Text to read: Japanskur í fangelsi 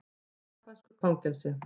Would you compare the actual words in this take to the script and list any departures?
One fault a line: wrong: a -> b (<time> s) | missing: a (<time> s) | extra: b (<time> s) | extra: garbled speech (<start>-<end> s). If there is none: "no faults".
no faults